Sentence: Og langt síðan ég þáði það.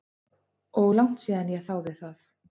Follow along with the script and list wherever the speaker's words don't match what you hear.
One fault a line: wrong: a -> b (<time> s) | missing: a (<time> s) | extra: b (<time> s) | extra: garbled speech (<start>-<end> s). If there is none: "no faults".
no faults